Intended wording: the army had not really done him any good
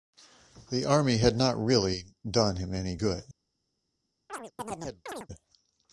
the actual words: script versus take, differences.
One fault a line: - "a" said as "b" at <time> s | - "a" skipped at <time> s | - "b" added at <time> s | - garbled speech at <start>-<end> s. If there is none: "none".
none